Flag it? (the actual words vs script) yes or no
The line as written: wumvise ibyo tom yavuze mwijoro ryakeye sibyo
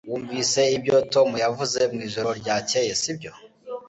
no